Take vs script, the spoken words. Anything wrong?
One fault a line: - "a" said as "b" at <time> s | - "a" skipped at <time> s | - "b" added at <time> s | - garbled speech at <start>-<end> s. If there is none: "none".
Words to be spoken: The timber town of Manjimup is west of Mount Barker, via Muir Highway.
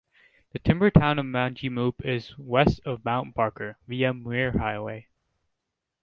none